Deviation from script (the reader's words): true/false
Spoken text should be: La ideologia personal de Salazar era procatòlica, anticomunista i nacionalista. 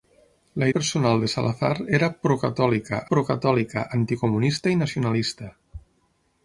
true